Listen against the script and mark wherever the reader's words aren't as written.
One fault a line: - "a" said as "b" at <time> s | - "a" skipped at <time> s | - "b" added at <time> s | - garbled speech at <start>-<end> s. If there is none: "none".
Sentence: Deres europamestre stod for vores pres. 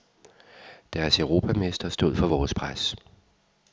none